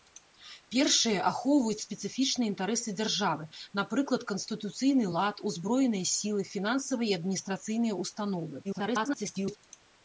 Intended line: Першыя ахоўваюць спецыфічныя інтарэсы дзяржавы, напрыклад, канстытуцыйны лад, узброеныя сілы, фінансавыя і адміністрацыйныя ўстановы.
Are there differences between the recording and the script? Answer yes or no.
yes